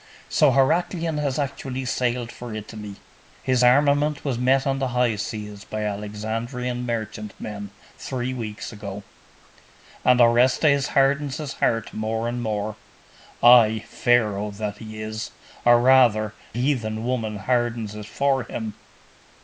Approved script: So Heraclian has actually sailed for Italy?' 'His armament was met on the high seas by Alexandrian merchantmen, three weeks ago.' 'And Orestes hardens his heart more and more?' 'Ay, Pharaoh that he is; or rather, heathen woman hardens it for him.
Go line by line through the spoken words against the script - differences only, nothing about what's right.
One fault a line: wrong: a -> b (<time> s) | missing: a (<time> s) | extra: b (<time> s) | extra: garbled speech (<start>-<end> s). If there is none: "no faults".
no faults